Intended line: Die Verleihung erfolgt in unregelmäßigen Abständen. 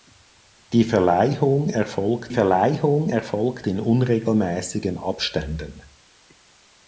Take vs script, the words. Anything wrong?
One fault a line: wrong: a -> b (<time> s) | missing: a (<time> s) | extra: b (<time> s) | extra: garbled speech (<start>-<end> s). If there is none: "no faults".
extra: Verleihung erfolgt (2.3 s)